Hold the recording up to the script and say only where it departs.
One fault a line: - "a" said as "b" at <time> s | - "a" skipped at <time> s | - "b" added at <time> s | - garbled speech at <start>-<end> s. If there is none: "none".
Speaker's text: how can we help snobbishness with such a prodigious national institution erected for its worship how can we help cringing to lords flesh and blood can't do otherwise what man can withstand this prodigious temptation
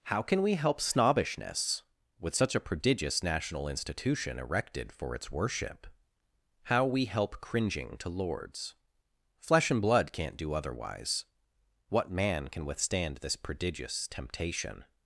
- "can" skipped at 6.8 s